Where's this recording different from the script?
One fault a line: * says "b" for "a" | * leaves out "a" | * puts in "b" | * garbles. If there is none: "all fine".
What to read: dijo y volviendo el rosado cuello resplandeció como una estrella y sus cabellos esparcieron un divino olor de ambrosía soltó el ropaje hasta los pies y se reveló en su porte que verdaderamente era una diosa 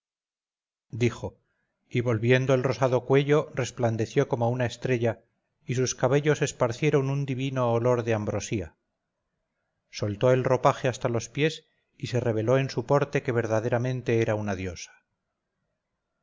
all fine